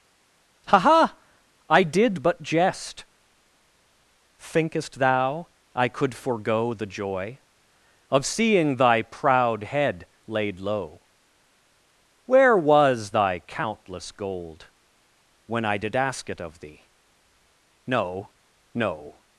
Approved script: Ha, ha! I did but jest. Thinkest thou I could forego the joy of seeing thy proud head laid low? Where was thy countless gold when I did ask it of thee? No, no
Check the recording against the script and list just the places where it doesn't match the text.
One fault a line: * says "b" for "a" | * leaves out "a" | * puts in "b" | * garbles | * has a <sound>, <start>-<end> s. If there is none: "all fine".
all fine